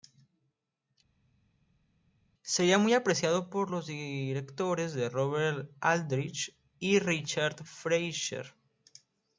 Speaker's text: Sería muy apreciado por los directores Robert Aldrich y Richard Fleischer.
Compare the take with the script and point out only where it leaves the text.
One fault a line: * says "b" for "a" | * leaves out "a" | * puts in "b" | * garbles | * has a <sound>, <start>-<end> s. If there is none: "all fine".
all fine